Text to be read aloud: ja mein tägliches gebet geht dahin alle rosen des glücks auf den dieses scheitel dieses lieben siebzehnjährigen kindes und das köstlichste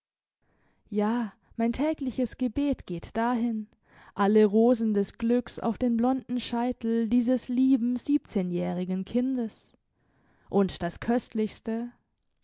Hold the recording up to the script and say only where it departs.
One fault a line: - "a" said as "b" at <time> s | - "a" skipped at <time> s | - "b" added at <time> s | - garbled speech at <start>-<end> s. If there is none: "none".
- "dieses" said as "blonden" at 6.0 s